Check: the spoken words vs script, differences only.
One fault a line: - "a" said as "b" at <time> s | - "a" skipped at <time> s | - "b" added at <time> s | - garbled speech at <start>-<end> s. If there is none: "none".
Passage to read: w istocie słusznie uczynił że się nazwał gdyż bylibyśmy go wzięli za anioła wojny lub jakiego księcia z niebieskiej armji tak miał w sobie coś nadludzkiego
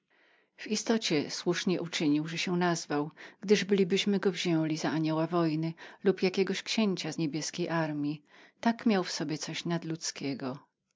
none